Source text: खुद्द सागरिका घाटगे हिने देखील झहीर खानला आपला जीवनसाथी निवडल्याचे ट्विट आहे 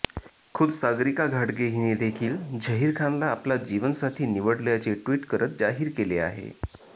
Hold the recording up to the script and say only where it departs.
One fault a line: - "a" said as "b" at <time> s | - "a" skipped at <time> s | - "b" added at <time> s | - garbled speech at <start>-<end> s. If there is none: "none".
- "करत जाहीर केले" added at 5.3 s